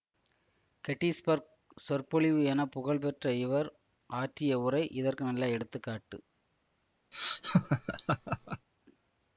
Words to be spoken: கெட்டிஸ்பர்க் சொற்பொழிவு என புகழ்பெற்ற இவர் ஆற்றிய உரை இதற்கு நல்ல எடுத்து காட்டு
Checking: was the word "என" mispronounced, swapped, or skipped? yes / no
no